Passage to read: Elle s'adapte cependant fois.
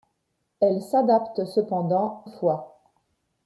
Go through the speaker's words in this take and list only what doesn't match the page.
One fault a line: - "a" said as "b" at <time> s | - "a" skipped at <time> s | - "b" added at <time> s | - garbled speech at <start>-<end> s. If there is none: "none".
none